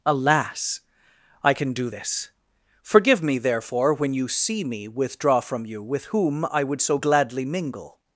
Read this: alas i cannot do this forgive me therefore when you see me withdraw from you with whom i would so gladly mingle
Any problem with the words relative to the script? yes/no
yes